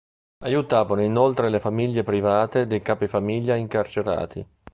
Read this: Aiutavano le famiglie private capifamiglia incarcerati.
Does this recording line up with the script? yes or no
no